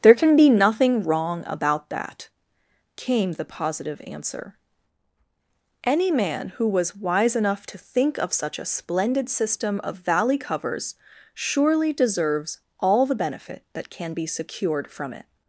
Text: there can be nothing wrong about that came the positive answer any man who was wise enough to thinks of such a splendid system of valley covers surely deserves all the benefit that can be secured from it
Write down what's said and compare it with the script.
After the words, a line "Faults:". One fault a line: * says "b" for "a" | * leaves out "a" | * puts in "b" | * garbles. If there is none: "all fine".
there can be nothing wrong about that came the positive answer any man who was wise enough to think of such a splendid system of valley covers surely deserves all the benefit that can be secured from it
Faults:
* says "think" for "thinks"